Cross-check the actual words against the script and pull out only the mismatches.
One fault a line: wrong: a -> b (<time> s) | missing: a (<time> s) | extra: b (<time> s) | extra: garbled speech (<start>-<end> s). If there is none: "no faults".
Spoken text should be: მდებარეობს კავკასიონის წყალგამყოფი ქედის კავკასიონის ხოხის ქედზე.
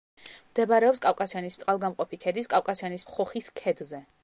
no faults